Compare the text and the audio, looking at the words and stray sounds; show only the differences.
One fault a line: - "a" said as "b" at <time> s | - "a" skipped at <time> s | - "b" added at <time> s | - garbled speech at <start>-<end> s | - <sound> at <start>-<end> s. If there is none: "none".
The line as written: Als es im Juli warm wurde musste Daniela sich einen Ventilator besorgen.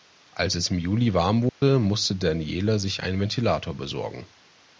- dropout at 1.5-1.6 s